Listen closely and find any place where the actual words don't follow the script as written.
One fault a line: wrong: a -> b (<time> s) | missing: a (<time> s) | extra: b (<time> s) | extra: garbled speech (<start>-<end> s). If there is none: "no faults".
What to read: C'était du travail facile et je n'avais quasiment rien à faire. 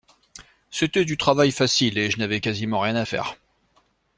no faults